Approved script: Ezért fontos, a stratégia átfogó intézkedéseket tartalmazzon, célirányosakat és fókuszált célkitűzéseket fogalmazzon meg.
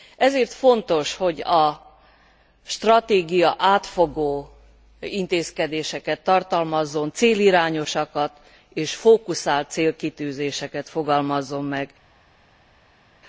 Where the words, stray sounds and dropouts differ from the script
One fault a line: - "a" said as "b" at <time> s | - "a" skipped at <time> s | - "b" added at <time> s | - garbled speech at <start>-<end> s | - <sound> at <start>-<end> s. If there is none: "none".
- "hogy" added at 1.1 s